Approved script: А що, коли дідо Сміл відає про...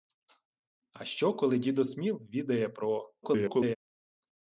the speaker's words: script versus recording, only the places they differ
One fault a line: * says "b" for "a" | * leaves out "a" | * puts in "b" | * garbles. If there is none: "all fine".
* garbles